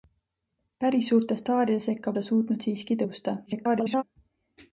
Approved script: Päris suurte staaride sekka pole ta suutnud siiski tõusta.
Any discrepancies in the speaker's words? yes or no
yes